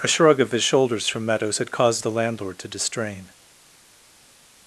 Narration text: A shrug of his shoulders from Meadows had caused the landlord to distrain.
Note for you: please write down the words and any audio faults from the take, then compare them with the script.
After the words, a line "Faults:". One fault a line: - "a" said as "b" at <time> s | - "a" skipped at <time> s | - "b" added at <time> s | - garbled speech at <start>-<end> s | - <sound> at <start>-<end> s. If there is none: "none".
A shrug of his shoulders from Meadows had caused the landlord to distrain.
Faults:
none